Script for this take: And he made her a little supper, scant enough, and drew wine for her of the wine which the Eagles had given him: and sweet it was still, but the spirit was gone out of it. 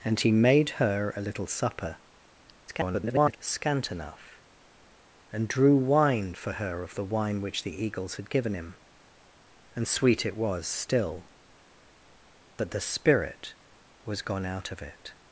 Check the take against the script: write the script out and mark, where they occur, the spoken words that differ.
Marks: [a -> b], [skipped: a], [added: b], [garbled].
And he made her a little supper, [garbled] scant enough, and drew wine for her of the wine which the Eagles had given him: and sweet it was still, but the spirit was gone out of it.